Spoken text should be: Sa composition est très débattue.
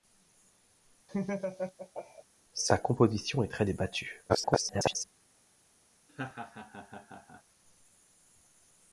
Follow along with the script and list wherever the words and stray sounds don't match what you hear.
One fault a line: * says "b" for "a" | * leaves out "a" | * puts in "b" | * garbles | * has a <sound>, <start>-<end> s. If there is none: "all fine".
* has a laugh, 1.1-2.2 s
* garbles
* has a laugh, 6.1-7.4 s